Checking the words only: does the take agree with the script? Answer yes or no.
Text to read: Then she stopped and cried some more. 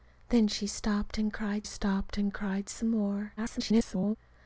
no